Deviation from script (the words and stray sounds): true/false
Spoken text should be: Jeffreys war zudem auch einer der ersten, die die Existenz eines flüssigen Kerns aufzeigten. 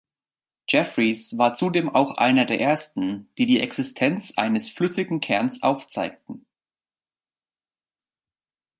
false